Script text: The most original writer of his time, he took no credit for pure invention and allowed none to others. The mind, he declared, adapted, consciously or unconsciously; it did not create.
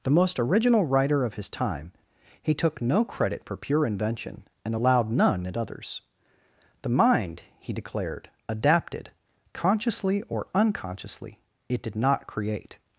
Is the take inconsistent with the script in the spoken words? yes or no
yes